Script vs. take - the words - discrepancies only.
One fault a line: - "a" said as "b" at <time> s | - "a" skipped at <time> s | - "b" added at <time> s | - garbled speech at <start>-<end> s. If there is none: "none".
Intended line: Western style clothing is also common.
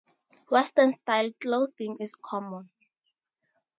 - "also" skipped at 2.1 s